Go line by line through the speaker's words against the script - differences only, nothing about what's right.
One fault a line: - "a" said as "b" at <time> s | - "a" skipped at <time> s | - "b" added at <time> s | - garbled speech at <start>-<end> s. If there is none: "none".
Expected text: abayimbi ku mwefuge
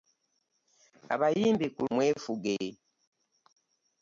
none